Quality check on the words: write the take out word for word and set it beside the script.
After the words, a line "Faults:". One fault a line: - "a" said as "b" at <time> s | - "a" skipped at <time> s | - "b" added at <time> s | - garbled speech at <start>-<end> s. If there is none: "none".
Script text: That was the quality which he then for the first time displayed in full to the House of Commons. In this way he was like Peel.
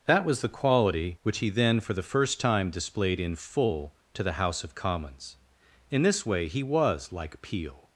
That was the quality which he then for the first time displayed in full to the House of Commons. In this way he was like Peel.
Faults:
none